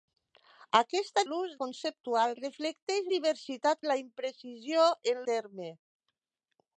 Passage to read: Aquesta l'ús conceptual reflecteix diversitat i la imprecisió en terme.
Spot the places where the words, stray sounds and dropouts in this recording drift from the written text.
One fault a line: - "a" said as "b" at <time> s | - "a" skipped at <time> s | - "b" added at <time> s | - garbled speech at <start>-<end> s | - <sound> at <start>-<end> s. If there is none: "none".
none